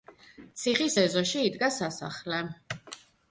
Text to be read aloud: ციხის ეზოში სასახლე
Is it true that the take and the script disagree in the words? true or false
true